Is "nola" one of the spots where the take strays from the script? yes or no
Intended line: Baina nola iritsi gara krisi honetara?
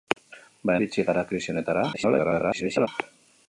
yes